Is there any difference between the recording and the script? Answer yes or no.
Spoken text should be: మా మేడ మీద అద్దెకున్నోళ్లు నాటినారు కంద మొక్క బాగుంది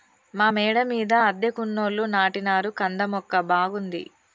no